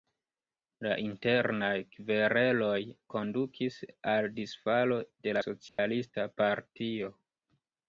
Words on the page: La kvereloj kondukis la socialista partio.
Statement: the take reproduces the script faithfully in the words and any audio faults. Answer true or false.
false